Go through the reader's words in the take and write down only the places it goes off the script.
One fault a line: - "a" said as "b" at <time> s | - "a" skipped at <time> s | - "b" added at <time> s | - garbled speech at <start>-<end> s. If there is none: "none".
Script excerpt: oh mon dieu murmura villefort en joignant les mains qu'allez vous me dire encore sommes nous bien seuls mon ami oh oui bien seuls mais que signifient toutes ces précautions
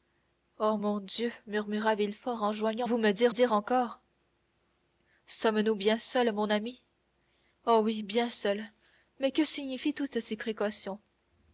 - "les mains qu'allez" skipped at 2.9 s
- "dire" added at 3.3 s